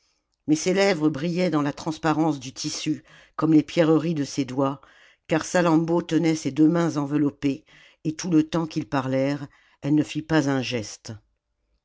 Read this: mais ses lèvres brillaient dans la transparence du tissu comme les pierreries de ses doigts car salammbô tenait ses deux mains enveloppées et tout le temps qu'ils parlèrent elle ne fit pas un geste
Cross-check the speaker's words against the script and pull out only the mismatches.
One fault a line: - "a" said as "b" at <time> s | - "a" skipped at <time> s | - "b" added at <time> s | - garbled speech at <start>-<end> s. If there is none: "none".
none